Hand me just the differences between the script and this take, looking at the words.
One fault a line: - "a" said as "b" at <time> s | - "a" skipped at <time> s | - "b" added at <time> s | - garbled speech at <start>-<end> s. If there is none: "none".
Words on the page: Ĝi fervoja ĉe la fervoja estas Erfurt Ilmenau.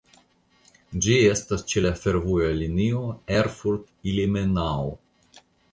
- "fervoja" said as "estas" at 1.3 s
- "estas" said as "linio" at 2.6 s